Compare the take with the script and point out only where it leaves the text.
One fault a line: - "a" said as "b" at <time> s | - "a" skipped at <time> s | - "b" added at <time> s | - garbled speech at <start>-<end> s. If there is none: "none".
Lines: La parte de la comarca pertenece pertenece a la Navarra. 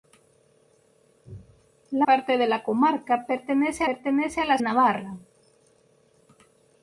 none